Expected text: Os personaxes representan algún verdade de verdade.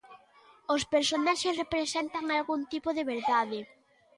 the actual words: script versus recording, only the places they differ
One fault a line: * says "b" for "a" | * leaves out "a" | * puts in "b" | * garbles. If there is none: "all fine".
* says "tipo" for "verdade"